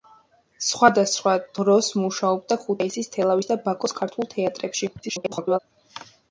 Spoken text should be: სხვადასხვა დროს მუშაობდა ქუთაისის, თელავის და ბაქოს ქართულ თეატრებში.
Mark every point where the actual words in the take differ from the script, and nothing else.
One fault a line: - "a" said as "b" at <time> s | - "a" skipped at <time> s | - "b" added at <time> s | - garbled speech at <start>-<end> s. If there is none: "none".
- garbled speech at 5.0-5.6 s